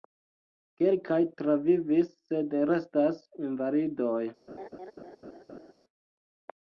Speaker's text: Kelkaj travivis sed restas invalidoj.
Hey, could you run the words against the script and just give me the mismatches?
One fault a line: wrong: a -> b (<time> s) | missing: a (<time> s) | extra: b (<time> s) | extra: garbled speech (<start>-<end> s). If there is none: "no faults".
no faults